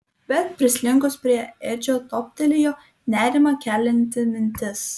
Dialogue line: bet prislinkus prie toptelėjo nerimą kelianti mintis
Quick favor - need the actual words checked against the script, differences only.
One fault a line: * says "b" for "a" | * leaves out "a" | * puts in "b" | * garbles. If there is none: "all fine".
* puts in "edžio"